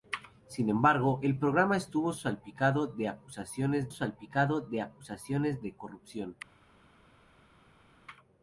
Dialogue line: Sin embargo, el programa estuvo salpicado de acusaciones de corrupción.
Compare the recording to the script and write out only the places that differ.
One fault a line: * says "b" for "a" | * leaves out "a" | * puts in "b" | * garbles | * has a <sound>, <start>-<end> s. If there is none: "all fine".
* puts in "salpicado de acusaciones"